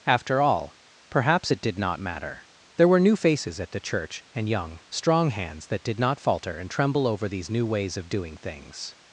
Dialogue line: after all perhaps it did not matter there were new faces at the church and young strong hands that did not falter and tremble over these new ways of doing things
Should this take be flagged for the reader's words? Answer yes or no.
no